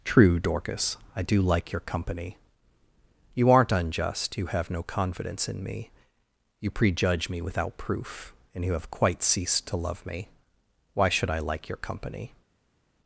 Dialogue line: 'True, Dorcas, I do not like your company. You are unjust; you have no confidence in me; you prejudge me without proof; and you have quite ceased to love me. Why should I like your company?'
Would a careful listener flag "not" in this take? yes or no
yes